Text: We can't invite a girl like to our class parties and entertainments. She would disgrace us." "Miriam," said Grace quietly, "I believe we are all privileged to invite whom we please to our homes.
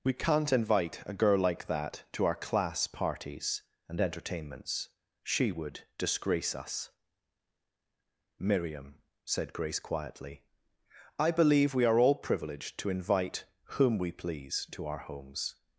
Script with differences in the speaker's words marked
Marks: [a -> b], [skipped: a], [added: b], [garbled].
We can't invite a girl like [added: that] to our class parties and entertainments. She would disgrace us." "Miriam," said Grace quietly, "I believe we are all privileged to invite whom we please to our homes.